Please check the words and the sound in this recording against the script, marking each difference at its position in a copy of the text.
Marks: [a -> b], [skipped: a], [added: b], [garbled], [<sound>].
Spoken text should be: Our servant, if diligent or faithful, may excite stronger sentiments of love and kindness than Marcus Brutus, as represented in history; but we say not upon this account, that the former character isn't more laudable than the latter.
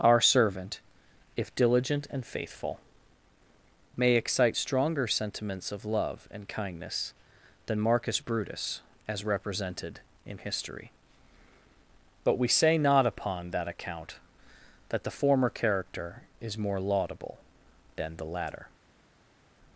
Our servant, if diligent [or -> and] faithful, may excite stronger sentiments of love and kindness than Marcus Brutus, as represented in history; but we say not upon [this -> that] account, that the former character [isn't -> is] more laudable than the latter.